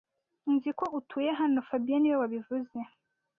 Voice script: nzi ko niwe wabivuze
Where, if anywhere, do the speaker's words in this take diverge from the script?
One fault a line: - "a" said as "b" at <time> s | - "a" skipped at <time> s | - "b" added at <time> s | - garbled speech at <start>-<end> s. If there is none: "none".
- "utuye hano fabien" added at 1.0 s